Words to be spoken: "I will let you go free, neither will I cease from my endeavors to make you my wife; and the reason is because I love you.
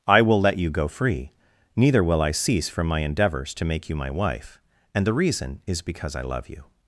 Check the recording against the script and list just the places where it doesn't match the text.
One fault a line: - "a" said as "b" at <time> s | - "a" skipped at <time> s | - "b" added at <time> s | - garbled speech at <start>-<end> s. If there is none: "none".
none